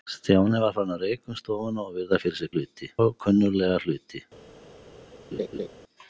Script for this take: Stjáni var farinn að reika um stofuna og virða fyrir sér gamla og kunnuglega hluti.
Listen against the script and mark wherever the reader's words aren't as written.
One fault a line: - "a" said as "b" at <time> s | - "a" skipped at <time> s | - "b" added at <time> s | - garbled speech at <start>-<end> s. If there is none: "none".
- "gamla" said as "hluti" at 2.5 s